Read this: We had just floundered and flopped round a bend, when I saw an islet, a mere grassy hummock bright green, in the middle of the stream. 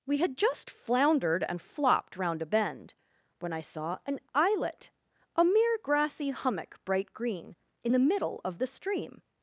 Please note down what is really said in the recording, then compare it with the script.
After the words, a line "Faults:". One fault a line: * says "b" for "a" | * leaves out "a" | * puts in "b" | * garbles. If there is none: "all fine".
We had just floundered and flopped round a bend, when I saw an islet, a mere grassy hummock bright green, in the middle of the stream.
Faults:
all fine